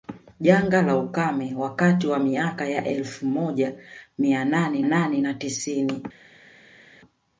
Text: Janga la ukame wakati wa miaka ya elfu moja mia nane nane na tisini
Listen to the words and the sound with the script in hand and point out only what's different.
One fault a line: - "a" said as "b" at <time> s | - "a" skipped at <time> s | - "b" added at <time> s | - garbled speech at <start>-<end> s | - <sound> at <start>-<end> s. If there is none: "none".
none